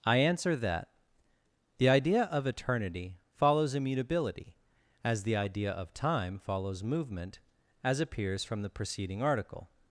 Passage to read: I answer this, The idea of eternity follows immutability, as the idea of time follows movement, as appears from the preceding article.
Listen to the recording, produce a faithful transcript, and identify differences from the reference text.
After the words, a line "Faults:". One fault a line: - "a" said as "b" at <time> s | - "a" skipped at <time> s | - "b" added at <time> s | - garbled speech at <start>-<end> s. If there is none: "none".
I answer that, The idea of eternity follows immutability, as the idea of time follows movement, as appears from the preceding article.
Faults:
- "this" said as "that" at 0.6 s